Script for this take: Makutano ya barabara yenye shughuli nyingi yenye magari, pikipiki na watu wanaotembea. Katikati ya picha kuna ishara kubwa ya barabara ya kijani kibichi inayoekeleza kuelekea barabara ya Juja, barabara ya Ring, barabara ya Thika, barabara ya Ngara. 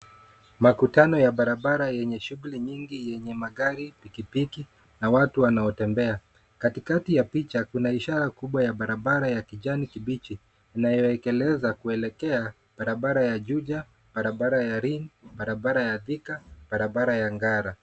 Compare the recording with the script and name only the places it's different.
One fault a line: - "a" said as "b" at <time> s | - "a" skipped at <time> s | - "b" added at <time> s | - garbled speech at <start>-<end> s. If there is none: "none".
none